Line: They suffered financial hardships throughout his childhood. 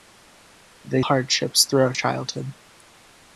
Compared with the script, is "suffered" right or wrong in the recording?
wrong